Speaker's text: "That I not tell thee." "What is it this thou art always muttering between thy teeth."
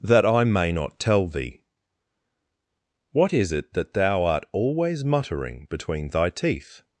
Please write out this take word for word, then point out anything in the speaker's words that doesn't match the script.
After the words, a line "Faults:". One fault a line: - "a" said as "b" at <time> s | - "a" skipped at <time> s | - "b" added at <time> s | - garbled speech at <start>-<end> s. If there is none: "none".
"That I may not tell thee." "What is it that thou art always muttering between thy teeth."
Faults:
- "may" added at 0.4 s
- "this" said as "that" at 3.7 s